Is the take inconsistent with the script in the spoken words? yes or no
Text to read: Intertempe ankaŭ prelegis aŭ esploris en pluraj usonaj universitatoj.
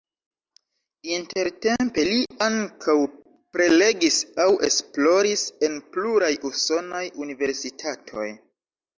yes